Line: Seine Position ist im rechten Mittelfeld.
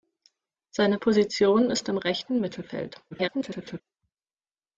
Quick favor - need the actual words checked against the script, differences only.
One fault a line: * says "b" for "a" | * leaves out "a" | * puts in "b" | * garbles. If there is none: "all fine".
* garbles